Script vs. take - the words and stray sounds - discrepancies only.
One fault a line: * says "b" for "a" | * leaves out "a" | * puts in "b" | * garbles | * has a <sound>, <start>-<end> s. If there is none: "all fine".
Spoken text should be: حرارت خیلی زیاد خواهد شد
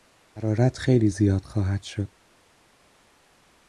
all fine